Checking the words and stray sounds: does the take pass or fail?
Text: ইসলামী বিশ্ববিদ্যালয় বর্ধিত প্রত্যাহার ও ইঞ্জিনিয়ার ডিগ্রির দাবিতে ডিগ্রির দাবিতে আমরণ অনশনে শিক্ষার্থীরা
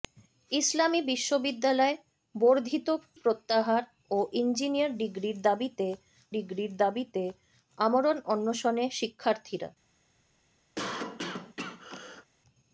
fail